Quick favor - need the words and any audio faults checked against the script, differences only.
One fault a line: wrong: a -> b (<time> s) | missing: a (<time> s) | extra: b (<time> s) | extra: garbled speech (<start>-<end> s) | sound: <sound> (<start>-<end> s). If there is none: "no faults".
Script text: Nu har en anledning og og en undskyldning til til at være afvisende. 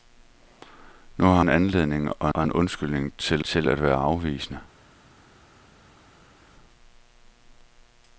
no faults